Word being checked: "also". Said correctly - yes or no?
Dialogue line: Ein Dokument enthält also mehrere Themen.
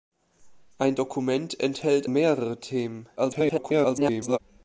no